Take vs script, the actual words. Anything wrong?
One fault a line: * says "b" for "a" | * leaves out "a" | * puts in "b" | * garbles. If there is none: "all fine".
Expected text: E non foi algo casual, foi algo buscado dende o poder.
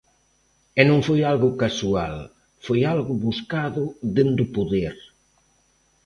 all fine